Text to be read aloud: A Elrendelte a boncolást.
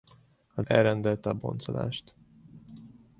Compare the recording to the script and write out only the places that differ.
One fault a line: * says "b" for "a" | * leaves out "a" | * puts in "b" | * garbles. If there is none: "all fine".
all fine